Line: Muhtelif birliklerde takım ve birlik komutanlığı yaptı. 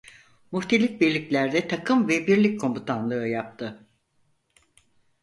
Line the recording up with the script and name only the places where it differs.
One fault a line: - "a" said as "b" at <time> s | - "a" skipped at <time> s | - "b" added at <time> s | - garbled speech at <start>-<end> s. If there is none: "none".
none